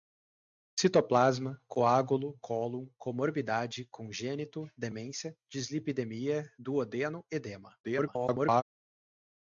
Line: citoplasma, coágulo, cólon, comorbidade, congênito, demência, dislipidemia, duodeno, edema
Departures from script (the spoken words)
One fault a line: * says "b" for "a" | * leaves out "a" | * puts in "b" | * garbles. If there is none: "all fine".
* garbles